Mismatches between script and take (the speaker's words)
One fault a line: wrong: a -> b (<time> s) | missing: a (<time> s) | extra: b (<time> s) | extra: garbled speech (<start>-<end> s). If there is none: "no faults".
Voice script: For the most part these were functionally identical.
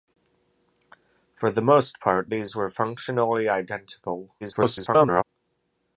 extra: garbled speech (4.4-5.2 s)